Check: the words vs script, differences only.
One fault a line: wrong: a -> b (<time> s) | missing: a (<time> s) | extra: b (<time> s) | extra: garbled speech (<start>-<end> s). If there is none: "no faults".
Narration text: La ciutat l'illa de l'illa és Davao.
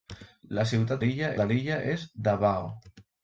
no faults